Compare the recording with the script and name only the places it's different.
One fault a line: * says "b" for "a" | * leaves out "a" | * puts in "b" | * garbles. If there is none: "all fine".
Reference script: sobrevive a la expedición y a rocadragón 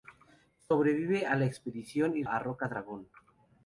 all fine